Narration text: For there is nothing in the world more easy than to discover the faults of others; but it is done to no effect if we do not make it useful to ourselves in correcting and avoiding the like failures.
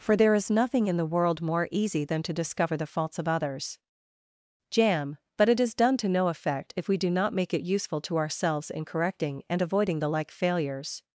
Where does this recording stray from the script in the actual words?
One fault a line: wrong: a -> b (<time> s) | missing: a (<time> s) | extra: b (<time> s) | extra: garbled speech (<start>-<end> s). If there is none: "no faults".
extra: jam (4.7 s)